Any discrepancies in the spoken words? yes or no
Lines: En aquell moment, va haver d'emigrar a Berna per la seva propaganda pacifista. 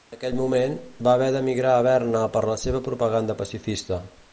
no